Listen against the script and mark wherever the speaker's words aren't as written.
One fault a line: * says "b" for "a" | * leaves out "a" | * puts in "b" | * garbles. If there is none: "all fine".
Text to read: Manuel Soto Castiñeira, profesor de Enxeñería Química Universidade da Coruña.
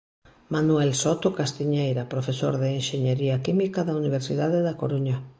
* puts in "da"